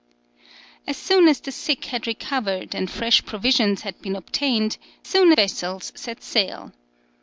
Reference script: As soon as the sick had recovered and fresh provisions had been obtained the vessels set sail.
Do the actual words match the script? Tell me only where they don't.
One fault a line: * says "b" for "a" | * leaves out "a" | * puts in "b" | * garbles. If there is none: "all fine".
* says "soon" for "the"